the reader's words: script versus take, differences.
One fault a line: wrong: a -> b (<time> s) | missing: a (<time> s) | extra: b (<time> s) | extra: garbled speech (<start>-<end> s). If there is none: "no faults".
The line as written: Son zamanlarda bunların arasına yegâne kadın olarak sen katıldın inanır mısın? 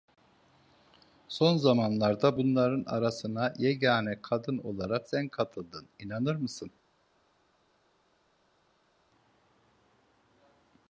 no faults